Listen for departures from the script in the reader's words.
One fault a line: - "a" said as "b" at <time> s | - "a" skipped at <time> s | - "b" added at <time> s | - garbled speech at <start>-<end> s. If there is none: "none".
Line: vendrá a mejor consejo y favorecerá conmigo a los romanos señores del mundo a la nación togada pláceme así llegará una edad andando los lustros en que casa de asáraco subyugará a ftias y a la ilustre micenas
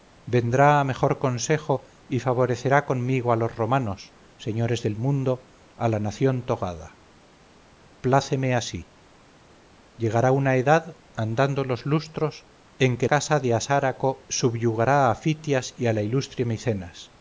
none